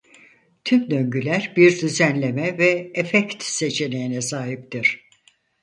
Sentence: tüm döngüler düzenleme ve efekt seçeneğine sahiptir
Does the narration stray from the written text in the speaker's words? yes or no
yes